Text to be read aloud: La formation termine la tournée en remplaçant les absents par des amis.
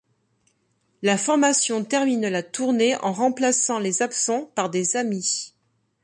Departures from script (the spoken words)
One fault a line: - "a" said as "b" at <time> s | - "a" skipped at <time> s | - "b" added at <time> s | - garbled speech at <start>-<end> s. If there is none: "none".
none